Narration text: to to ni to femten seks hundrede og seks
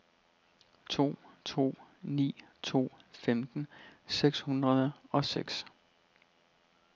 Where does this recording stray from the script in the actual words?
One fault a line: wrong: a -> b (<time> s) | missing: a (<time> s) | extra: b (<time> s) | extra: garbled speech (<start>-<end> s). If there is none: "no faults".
no faults